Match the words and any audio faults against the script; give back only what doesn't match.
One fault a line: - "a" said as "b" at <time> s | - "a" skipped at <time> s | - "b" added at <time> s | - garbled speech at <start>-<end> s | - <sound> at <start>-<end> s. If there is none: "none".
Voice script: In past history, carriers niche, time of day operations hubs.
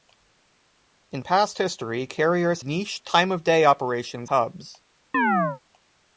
- chirp at 5.1-5.6 s